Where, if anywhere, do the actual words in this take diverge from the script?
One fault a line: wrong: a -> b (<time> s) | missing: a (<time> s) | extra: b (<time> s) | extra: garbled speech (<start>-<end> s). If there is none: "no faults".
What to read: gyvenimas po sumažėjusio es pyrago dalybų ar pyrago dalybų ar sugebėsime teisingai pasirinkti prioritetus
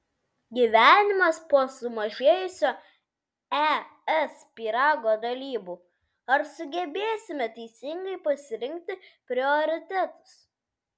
missing: pyrago dalybų ar (6.5 s)